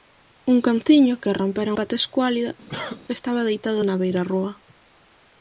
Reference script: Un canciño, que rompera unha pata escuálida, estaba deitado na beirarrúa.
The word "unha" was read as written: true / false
false